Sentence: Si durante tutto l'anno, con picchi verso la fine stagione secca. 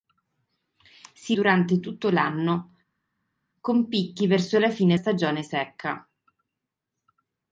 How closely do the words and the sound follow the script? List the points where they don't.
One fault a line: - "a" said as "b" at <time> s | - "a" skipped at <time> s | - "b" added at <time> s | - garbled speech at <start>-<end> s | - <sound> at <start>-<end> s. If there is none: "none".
none